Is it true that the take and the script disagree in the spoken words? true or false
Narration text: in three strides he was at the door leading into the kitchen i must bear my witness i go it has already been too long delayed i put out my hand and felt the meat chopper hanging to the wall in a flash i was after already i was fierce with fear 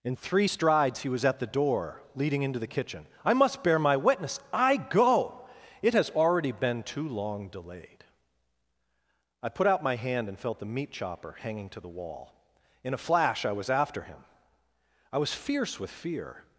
true